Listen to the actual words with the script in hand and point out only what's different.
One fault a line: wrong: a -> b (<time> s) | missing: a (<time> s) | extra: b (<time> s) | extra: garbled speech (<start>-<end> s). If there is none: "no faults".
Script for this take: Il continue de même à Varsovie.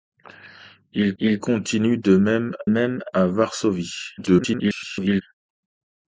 extra: il (1.2 s)
extra: même (2.7 s)
extra: garbled speech (4.2-5.2 s)